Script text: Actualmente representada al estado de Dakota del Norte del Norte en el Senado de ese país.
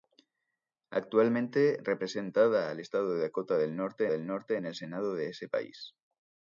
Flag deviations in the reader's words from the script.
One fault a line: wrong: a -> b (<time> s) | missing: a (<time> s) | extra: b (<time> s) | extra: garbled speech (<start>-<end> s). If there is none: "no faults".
no faults